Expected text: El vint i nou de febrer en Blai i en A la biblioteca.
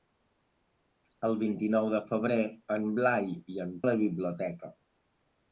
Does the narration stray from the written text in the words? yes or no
no